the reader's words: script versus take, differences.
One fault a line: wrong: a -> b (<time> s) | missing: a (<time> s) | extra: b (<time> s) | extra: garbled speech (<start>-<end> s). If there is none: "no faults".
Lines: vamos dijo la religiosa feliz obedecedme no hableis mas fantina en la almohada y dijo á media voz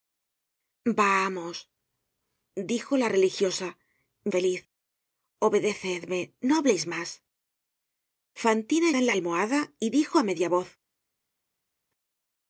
no faults